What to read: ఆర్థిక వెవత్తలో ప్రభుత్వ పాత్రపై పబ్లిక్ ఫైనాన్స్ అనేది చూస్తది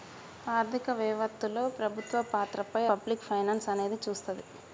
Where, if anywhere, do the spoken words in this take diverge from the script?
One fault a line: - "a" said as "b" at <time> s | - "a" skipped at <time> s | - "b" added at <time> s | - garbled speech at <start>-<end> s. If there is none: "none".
none